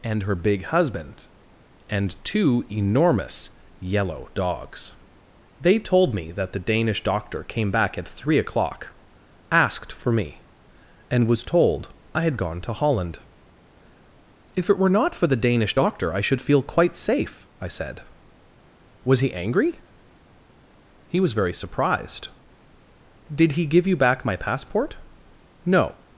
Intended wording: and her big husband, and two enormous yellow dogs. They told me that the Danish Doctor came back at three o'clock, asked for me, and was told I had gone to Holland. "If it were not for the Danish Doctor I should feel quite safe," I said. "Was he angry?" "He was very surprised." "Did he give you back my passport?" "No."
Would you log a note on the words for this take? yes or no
no